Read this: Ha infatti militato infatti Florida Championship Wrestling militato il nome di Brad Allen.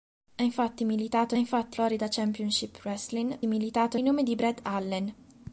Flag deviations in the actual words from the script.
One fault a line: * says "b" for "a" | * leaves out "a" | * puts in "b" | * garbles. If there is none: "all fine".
all fine